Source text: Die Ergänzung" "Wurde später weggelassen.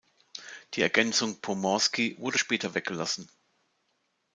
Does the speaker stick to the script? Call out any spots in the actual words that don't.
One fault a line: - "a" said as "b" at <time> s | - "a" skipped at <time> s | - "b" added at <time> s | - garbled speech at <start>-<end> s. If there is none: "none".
- "Pomorski" added at 1.4 s